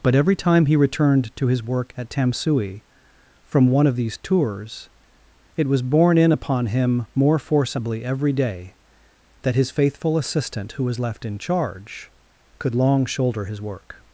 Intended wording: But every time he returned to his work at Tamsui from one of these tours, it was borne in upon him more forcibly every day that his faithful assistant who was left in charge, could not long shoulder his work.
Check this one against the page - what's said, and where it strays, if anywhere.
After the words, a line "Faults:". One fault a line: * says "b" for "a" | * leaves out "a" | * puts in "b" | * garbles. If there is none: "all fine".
But every time he returned to his work at Tamsui from one of these tours, it was borne in upon him more forcibly every day that his faithful assistant who was left in charge, could long shoulder his work.
Faults:
* leaves out "not"